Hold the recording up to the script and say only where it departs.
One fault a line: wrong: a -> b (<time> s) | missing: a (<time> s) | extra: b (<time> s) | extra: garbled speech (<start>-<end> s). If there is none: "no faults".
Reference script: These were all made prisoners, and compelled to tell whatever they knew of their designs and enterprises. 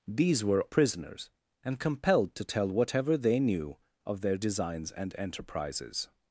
missing: all made (0.7 s)